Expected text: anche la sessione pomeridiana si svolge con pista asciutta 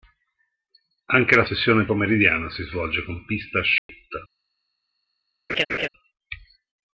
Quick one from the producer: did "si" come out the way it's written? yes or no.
yes